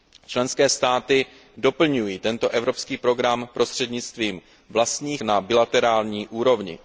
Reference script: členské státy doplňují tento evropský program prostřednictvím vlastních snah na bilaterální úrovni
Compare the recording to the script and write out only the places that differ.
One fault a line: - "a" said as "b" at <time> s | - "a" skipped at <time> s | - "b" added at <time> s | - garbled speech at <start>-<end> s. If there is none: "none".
- "snah" skipped at 5.2 s